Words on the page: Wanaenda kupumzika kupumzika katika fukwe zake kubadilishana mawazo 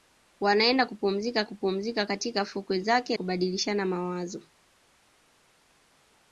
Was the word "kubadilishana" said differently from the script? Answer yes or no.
no